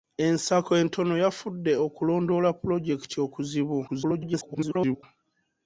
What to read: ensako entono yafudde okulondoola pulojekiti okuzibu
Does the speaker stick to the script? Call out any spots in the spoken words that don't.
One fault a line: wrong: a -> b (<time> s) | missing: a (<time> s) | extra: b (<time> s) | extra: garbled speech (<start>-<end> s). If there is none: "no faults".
extra: garbled speech (3.9-5.0 s)